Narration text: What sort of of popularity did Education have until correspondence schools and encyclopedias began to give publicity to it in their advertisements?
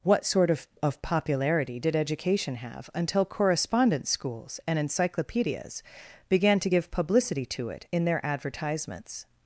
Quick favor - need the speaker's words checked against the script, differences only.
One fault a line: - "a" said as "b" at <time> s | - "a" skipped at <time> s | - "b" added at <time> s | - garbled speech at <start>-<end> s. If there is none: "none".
none